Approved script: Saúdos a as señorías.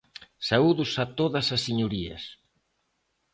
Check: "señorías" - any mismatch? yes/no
no